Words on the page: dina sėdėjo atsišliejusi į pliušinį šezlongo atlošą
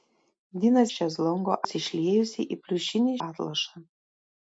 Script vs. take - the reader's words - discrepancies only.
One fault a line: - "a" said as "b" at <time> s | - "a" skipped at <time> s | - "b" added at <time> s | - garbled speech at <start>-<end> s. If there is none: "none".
- "sėdėjo" said as "šezlongo" at 1.0 s
- "šezlongo" skipped at 3.1 s